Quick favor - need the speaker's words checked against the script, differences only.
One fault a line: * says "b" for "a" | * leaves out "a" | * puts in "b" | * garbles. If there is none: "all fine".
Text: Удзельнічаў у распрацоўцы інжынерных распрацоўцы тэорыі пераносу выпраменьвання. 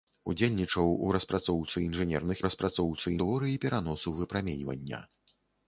all fine